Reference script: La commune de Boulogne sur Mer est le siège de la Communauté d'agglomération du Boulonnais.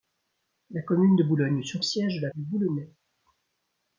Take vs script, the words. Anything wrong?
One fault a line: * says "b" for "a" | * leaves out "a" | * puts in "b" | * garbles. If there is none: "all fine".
* leaves out "Mer est le"
* leaves out "Communauté d'agglomération"